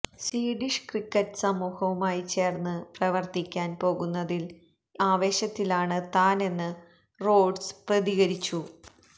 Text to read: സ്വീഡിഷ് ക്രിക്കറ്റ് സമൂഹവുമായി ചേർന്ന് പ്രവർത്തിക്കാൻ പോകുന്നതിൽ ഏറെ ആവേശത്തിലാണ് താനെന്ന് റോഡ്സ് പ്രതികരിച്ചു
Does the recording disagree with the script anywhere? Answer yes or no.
yes